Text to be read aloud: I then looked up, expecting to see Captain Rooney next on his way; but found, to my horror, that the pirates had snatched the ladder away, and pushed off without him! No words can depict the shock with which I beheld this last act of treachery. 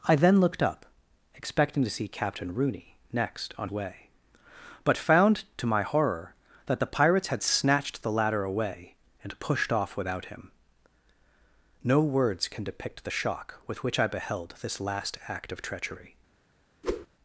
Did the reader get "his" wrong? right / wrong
wrong